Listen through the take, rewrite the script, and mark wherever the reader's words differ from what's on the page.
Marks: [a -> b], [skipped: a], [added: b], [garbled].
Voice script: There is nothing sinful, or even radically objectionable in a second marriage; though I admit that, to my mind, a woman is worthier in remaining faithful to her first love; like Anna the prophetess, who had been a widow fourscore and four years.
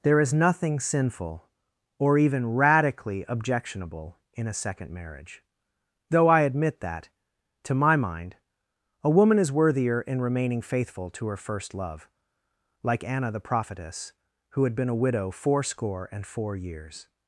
There is nothing sinful, or even radically objectionable in a second marriage; though I admit that, to my mind, a woman is worthier in remaining faithful to her first love; like Anna the prophetess, who had been a widow fourscore and four years.